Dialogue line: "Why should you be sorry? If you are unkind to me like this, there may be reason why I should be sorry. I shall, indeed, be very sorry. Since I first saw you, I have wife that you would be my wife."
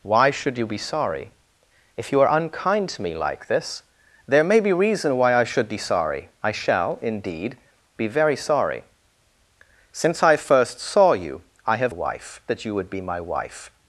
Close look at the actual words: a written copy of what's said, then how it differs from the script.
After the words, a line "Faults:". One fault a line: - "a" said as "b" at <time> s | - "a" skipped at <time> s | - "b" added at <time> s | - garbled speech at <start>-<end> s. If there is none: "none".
"Why should you be sorry? If you are unkind to me like this, there may be reason why I should be sorry. I shall, indeed, be very sorry. Since I first saw you, I have wife that you would be my wife."
Faults:
none